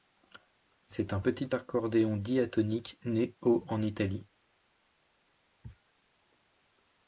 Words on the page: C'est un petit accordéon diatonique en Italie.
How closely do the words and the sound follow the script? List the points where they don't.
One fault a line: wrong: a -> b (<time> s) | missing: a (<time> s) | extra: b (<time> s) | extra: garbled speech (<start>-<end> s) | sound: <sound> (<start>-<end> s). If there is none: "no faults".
extra: né au (3.0 s)